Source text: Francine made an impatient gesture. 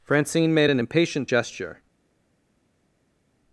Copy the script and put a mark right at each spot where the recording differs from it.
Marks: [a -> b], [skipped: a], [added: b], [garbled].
Francine made an impatient gesture.